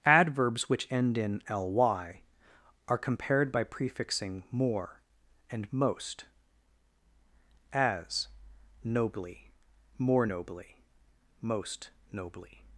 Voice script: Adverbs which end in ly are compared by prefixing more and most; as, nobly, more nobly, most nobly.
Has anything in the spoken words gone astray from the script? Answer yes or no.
no